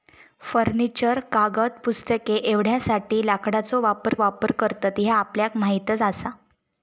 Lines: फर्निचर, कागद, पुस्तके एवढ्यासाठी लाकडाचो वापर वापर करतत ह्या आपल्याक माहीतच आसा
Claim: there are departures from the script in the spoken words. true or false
false